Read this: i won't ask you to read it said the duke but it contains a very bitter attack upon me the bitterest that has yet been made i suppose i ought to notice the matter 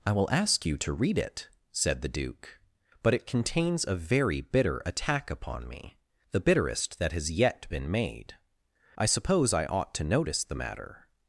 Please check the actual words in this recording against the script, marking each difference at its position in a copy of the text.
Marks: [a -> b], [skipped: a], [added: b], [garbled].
i [won't -> will] ask you to read it said the duke but it contains a very bitter attack upon me the bitterest that has yet been made i suppose i ought to notice the matter